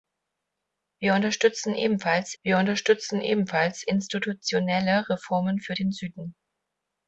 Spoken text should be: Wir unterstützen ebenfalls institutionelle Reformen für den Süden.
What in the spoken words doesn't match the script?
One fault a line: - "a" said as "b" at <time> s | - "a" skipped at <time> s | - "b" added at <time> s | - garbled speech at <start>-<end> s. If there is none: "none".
- "wir unterstützen ebenfalls" added at 2.4 s